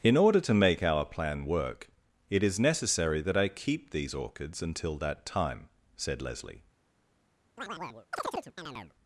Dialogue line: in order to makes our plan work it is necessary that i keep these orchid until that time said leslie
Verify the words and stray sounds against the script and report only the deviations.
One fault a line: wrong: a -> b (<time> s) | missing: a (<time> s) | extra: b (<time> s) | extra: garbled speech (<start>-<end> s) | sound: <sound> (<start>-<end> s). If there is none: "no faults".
wrong: makes -> make (0.6 s)
wrong: orchid -> orchids (4.2 s)
sound: chirp (7.6-8.9 s)